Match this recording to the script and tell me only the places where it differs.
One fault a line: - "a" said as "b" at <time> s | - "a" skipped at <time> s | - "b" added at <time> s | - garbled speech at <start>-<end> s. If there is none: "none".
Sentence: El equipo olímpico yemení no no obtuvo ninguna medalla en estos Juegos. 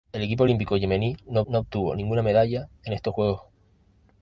none